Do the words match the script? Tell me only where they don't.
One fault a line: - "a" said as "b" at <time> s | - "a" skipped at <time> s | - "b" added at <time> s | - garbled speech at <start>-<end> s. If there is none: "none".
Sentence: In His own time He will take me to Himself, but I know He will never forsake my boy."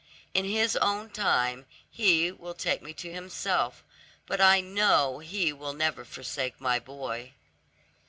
none